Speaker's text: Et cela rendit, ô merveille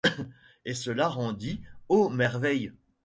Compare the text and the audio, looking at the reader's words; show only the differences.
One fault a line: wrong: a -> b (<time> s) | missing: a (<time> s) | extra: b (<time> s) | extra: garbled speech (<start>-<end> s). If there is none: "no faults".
no faults